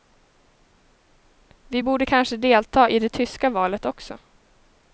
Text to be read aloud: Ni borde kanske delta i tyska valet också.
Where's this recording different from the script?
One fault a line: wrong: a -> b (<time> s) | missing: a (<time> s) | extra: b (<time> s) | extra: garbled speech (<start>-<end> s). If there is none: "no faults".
wrong: Ni -> Vi (1.7 s)
extra: det (3.0 s)